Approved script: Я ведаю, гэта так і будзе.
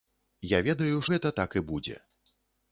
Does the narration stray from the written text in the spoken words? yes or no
no